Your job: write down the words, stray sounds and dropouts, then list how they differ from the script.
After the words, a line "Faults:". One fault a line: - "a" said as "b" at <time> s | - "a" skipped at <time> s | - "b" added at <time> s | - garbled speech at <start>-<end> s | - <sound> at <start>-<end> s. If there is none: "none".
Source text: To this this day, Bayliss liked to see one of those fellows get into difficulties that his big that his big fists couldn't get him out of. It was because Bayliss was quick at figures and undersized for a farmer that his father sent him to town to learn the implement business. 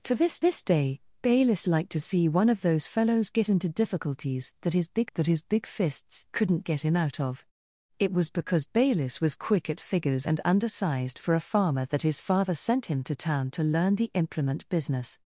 To this this day, Bayliss liked to see one of those fellows get into difficulties that his big that his big fists couldn't get him out of. It was because Bayliss was quick at figures and undersized for a farmer that his father sent him to town to learn the implement business.
Faults:
none